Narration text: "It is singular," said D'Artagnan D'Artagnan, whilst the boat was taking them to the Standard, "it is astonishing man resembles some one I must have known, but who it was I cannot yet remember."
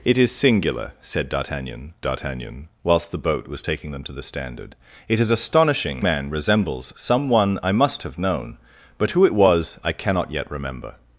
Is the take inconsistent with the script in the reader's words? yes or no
no